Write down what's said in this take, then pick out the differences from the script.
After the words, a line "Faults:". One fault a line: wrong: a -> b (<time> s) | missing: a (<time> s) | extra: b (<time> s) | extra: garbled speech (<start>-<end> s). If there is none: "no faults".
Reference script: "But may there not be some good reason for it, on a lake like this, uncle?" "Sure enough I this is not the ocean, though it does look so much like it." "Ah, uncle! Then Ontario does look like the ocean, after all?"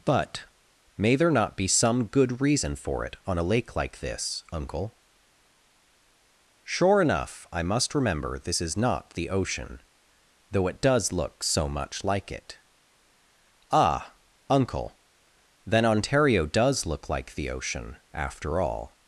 "But may there not be some good reason for it, on a lake like this, uncle?" "Sure enough I must remember this is not the ocean, though it does look so much like it." "Ah, uncle! Then Ontario does look like the ocean, after all?"
Faults:
extra: must remember (7.6 s)